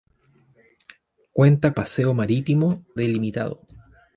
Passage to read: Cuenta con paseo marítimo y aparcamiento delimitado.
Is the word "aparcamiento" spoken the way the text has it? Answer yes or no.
no